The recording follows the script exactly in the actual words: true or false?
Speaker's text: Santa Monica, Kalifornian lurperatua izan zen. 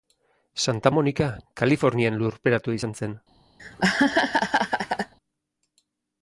true